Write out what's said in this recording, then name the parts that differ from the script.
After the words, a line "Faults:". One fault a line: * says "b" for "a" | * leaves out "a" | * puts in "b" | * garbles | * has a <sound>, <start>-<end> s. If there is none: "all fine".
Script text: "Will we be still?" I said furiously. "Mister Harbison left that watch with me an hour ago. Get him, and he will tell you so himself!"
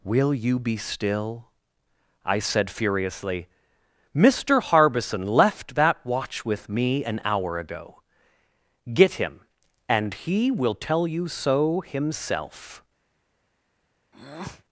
"Will you be still?" I said furiously. "Mister Harbison left that watch with me an hour ago. Get him, and he will tell you so himself!"
Faults:
* says "you" for "we"
* has a breath, 14.1-14.6 s